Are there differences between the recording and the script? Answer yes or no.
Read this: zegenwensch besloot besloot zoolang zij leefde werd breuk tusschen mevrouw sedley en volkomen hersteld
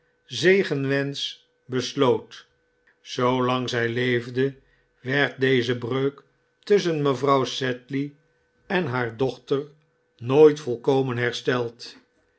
yes